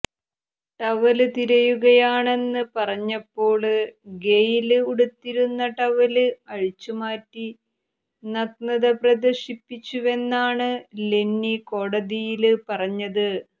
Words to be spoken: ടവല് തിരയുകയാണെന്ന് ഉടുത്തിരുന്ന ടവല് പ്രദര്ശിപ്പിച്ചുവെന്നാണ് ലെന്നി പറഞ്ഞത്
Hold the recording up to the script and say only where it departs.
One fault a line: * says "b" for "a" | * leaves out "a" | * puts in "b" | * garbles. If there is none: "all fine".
* puts in "പറഞ്ഞപ്പോള് ഗെയ്ല്"
* puts in "അഴിച്ചുമാറ്റി നഗ്നത"
* puts in "കോടതിയില്"